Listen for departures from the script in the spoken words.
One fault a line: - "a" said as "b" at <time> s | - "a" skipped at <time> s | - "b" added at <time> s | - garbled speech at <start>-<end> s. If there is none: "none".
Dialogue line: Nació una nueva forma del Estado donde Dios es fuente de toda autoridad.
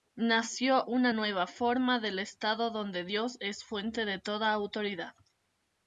none